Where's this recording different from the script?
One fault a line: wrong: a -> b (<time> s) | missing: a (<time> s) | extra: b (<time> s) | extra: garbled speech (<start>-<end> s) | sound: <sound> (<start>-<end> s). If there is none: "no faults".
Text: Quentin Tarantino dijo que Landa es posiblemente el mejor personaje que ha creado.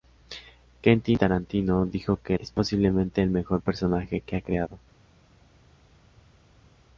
missing: Landa (2.4 s)